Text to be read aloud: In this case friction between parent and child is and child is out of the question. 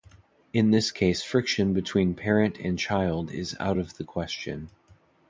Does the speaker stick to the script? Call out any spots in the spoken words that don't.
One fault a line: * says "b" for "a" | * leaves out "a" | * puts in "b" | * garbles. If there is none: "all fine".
* leaves out "and child is"